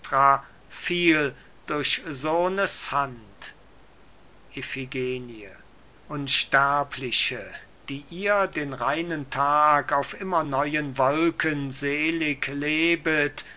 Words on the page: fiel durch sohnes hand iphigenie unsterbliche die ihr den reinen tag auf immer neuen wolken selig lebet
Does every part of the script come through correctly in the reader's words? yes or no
yes